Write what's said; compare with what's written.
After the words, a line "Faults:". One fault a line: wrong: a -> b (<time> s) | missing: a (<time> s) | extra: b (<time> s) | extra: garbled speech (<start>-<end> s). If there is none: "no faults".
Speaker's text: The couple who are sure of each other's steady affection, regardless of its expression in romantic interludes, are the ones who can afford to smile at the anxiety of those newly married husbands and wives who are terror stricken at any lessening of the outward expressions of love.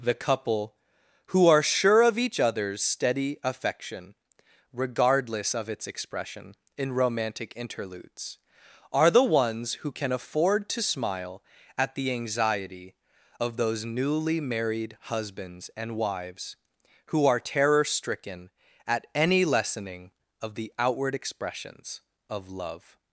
The couple who are sure of each other's steady affection, regardless of its expression in romantic interludes, are the ones who can afford to smile at the anxiety of those newly married husbands and wives who are terror stricken at any lessening of the outward expressions of love.
Faults:
no faults